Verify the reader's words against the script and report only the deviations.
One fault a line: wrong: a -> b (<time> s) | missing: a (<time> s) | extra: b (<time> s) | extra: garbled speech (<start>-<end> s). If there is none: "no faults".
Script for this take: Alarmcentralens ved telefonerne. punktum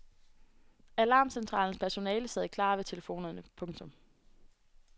extra: personale sad klar (1.8 s)